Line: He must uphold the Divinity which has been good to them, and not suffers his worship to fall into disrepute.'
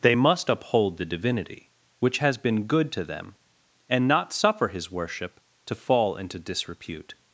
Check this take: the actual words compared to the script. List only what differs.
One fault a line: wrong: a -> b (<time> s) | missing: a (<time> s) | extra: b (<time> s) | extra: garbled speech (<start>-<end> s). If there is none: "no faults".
wrong: He -> They (0.0 s)
wrong: suffers -> suffer (4.3 s)